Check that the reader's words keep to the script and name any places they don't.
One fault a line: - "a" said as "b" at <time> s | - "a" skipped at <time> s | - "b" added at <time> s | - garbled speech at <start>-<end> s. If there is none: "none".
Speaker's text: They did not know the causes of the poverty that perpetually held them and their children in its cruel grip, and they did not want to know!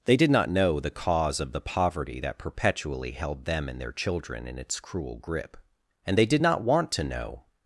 - "causes" said as "cause" at 0.9 s